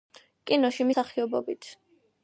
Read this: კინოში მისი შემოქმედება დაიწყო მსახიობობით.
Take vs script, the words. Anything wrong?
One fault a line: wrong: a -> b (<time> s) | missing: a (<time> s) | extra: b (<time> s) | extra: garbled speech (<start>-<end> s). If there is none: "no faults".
missing: მისი შემოქმედება დაიწყო (0.9 s)